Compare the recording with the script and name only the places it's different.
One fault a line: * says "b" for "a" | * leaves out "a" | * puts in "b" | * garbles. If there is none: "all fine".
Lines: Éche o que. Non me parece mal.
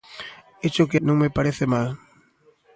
all fine